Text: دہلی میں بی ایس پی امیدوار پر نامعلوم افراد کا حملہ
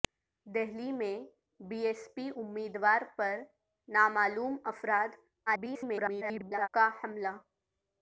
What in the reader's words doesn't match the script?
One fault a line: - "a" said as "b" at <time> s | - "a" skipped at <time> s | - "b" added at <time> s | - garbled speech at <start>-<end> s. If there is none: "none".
- garbled speech at 5.5-6.7 s